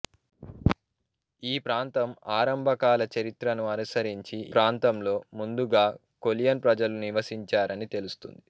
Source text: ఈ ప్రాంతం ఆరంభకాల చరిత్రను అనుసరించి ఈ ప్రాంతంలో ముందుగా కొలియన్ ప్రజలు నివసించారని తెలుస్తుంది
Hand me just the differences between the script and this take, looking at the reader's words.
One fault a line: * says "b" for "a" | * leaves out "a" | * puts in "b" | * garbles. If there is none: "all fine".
* leaves out "ఈ"